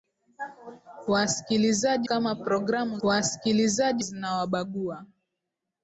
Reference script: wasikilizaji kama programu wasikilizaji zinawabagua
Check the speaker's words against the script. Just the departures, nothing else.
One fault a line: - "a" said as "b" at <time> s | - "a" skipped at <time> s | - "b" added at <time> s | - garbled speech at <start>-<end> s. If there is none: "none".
none